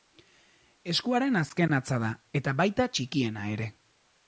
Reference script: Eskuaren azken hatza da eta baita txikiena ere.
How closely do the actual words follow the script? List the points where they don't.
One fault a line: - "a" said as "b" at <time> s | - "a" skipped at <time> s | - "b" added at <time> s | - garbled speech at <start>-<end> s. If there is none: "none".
none